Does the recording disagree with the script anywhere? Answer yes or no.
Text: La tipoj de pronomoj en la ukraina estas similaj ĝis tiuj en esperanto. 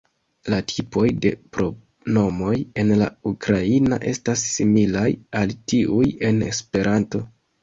yes